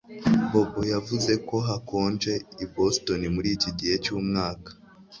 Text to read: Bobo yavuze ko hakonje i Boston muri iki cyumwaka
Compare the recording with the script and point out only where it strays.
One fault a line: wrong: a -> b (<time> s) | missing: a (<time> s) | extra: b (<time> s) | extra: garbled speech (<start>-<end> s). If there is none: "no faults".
extra: gihe (3.8 s)